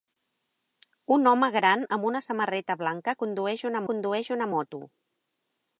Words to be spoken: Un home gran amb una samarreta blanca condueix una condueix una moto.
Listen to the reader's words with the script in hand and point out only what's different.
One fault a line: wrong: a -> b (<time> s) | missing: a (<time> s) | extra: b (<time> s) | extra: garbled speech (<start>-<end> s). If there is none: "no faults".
no faults